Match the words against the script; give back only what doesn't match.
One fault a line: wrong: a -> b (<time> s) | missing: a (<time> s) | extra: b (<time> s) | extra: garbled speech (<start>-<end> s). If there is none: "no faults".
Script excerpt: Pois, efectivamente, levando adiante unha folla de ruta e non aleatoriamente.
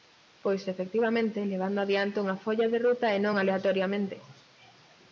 no faults